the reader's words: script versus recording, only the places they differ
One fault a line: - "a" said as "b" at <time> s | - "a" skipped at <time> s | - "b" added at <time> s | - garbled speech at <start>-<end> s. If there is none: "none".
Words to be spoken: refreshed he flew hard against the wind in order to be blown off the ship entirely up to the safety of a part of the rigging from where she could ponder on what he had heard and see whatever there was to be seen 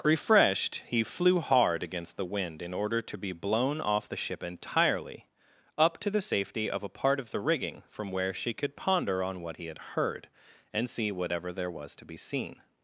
none